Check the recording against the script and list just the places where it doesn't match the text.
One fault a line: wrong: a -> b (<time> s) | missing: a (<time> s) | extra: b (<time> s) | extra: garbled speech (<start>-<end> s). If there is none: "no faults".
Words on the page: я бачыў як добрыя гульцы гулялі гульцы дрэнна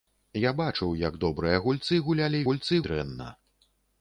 no faults